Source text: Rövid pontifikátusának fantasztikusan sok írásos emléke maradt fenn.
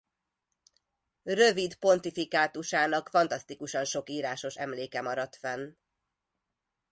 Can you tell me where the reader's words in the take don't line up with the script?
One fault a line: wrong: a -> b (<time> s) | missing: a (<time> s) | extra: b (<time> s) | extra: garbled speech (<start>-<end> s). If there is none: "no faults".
no faults